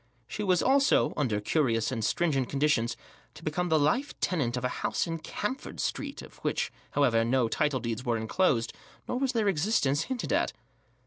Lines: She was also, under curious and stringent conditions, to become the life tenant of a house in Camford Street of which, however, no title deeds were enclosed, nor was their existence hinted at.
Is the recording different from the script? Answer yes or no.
no